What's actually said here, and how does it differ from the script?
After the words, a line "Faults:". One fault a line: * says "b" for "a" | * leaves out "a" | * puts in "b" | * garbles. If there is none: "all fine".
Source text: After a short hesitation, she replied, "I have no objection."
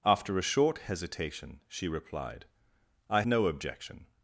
After a short hesitation, she replied, "I no objection."
Faults:
* leaves out "have"